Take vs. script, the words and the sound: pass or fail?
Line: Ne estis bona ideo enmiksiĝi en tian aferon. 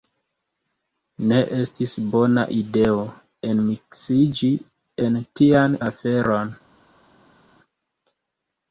pass